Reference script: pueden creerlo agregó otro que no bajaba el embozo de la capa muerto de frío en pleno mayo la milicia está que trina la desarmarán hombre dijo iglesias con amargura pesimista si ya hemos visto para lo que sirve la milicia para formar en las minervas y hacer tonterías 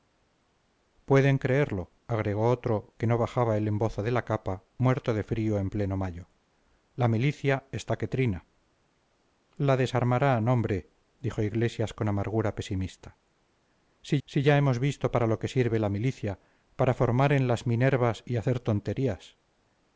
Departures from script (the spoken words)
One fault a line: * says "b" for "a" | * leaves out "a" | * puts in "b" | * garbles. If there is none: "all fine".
* puts in "si"